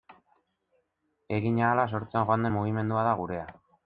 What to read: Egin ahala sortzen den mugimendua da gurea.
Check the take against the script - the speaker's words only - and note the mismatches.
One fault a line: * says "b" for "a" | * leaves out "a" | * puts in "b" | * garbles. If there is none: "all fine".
* puts in "joan"